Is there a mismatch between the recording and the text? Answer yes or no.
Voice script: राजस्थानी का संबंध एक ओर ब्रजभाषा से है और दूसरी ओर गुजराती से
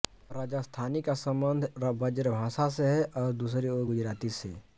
yes